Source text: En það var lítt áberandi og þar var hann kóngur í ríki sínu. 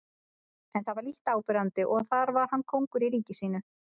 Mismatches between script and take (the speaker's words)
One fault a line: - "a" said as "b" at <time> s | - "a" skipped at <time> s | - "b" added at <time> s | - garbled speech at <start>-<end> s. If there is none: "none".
none